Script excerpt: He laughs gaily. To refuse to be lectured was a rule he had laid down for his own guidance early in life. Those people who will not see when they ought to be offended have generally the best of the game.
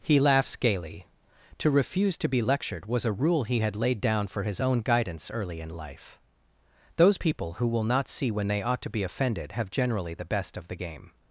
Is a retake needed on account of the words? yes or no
no